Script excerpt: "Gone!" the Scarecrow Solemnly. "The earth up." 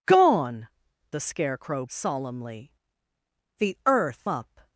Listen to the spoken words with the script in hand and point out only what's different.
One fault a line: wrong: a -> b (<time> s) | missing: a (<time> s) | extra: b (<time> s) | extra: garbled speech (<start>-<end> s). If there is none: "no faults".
no faults